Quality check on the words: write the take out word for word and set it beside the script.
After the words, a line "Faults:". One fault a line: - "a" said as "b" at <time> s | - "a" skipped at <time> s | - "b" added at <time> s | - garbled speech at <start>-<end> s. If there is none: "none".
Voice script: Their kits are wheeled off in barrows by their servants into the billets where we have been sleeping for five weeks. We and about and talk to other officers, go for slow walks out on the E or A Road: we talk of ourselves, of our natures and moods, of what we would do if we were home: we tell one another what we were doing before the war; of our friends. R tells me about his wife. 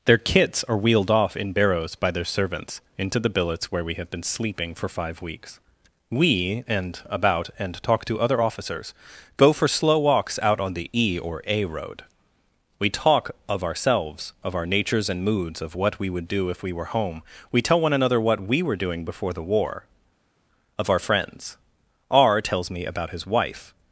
Their kits are wheeled off in barrows by their servants into the billets where we have been sleeping for five weeks. We and about and talk to other officers, go for slow walks out on the E or A Road: we talk of ourselves, of our natures and moods, of what we would do if we were home: we tell one another what we were doing before the war; of our friends. R tells me about his wife.
Faults:
none